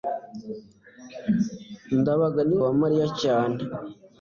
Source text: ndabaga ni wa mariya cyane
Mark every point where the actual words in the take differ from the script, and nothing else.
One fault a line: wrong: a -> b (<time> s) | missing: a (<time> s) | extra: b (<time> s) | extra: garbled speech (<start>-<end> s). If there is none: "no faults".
no faults